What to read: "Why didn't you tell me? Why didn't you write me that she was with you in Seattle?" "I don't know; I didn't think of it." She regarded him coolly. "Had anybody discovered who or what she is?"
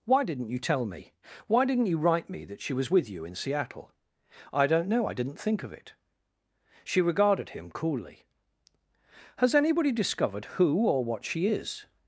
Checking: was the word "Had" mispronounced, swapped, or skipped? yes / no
yes